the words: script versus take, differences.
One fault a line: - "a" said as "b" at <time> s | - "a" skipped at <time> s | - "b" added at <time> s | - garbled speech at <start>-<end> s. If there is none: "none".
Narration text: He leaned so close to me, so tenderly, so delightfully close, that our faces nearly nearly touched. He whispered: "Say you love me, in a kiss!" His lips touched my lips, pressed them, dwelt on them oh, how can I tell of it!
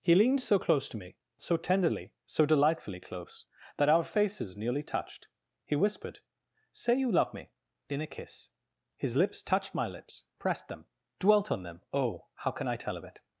- "nearly" skipped at 4.8 s